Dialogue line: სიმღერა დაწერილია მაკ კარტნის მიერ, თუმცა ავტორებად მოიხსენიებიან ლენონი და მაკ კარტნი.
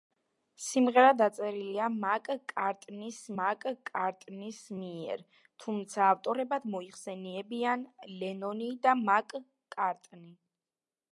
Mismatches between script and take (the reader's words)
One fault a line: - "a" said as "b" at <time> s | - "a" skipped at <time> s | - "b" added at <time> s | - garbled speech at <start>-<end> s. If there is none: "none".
- "მაკ კარტნის" added at 3.4 s